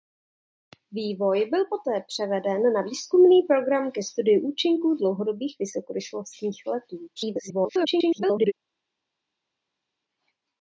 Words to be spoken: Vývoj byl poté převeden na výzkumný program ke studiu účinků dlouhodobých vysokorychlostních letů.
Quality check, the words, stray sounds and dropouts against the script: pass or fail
fail